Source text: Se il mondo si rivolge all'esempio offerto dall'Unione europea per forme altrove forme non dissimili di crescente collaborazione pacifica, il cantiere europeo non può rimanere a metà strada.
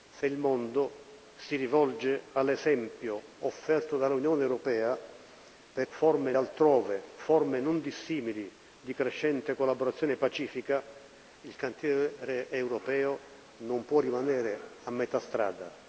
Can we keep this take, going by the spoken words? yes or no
yes